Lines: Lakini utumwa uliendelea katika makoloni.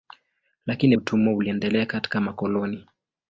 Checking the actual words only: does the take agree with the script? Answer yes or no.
yes